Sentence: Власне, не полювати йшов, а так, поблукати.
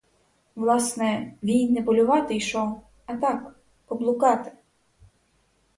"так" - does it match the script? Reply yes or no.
yes